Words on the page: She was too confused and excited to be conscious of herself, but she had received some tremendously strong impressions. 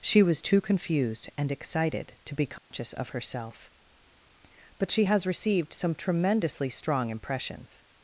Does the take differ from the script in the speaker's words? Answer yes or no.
yes